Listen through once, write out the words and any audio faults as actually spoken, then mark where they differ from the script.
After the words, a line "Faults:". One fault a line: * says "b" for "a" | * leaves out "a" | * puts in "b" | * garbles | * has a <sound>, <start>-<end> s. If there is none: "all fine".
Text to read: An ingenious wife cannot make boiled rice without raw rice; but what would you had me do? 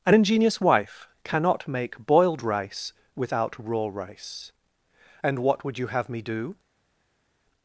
An ingenious wife cannot make boiled rice without raw rice; and what would you have me do?
Faults:
* says "and" for "but"
* says "have" for "had"